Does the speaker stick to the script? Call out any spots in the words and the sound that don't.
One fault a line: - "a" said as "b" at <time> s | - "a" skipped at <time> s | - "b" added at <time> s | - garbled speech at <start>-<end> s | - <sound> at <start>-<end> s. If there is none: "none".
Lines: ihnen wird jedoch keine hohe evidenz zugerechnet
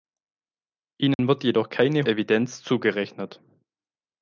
- dropout at 1.1-1.2 s
- "hohe" skipped at 2.1 s